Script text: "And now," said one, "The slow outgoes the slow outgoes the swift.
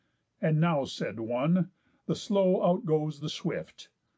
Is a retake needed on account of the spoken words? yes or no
yes